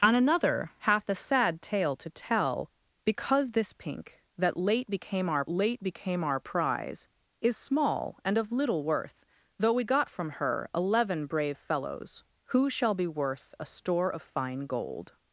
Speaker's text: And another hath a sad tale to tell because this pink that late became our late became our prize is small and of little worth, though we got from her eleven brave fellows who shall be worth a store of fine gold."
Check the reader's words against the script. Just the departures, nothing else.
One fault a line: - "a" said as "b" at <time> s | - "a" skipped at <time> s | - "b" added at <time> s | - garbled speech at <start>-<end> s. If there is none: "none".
none